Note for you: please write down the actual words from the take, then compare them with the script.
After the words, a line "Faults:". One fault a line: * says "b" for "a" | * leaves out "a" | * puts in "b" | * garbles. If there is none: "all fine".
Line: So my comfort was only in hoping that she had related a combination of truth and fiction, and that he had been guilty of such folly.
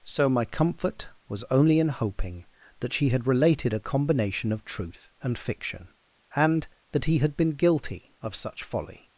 So my comfort was only in hoping that she had related a combination of truth and fiction, and that he had been guilty of such folly.
Faults:
all fine